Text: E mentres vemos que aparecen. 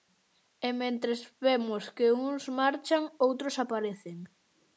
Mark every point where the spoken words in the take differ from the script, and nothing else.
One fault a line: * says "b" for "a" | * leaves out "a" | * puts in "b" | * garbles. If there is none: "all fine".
* puts in "uns marchan outros"